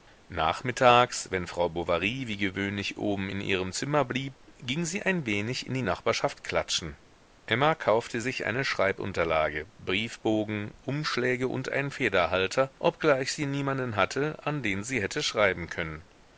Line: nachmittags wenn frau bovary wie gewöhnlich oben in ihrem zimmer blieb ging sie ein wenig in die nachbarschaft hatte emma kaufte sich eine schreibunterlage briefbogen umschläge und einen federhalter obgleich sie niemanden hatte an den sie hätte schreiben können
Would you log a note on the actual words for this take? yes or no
yes